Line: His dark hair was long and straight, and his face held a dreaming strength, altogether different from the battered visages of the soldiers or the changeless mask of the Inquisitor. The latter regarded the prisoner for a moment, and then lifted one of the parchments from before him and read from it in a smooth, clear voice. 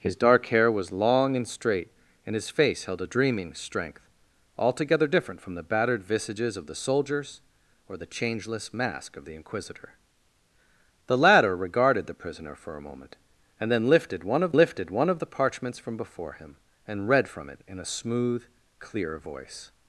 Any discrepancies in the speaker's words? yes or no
yes